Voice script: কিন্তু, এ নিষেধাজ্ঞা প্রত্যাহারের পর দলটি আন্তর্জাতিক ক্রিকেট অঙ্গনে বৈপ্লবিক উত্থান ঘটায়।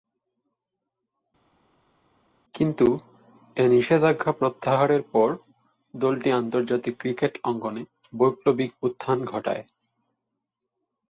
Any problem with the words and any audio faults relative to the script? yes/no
no